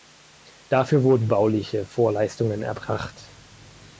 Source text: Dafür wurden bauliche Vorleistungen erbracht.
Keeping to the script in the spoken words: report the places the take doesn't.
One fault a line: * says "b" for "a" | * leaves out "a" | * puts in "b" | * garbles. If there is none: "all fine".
all fine